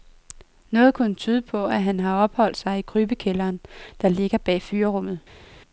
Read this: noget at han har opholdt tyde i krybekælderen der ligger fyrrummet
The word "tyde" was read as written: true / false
false